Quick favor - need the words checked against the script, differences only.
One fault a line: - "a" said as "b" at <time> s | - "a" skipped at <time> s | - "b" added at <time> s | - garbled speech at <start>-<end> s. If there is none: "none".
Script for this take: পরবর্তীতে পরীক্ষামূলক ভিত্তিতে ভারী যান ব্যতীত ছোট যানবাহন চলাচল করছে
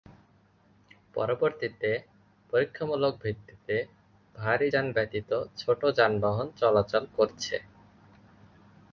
none